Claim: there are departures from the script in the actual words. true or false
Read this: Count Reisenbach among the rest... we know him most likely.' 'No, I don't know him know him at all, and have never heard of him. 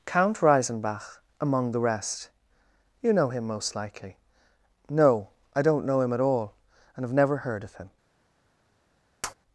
true